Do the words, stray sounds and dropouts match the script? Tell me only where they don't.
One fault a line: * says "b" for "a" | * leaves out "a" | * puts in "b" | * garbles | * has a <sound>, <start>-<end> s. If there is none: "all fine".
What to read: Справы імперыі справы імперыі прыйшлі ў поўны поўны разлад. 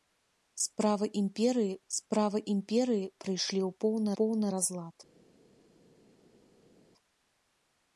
all fine